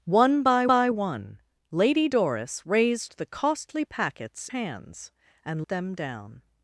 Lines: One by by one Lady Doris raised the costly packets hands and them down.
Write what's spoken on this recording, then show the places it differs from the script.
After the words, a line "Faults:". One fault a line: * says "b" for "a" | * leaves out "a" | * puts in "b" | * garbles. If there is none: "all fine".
One by by one Lady Doris raised the costly packets hands and them down.
Faults:
all fine